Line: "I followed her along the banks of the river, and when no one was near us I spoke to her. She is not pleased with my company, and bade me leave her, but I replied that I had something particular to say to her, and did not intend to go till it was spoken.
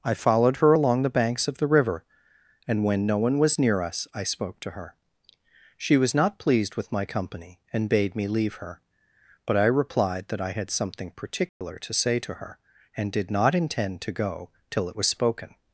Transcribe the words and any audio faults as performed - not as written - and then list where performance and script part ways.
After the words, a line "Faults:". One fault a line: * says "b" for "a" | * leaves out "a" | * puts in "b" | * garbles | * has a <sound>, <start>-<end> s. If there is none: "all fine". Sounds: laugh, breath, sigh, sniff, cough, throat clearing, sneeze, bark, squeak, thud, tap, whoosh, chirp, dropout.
"I followed her along the banks of the river, and when no one was near us I spoke to her. She was not pleased with my company, and bade me leave her, but I replied that I had something particular to say to her, and did not intend to go till it was spoken.
Faults:
* says "was" for "is"
* has a dropout, 11.5-11.6 s